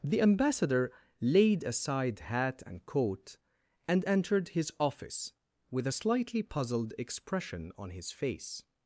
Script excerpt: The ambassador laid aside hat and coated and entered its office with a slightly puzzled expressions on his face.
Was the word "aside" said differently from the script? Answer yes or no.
no